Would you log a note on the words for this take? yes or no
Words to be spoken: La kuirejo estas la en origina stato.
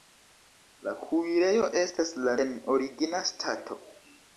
no